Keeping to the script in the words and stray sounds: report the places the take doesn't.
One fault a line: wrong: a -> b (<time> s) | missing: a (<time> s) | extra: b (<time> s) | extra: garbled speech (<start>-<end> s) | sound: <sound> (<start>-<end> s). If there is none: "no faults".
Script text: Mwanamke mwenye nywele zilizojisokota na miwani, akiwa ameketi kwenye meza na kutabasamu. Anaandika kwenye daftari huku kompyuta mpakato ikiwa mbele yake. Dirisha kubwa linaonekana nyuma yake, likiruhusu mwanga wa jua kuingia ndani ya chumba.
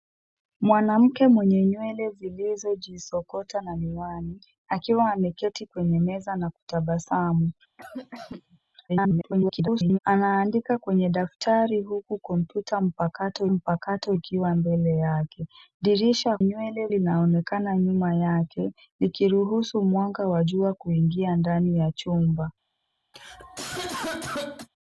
sound: cough (7.8-8.6 s)
extra: garbled speech (8.9-10.0 s)
extra: mpakato (13.5 s)
wrong: kubwa -> nywele (16.4 s)
sound: cough (23.1-24.7 s)